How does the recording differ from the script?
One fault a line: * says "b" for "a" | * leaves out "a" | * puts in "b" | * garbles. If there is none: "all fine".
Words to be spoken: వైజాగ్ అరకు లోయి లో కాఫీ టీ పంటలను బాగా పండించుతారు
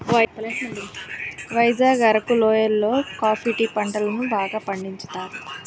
all fine